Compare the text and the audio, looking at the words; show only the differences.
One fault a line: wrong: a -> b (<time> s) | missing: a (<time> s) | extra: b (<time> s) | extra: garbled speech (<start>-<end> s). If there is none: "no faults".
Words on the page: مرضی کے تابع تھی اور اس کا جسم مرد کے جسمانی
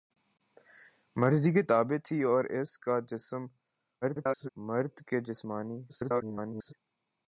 extra: garbled speech (4.0-4.5 s)
extra: garbled speech (5.9-6.7 s)